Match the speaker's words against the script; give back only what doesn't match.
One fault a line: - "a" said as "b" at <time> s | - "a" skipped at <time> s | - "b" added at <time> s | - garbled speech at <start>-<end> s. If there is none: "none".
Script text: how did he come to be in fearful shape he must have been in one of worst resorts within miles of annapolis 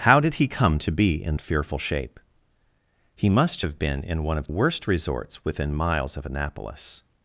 none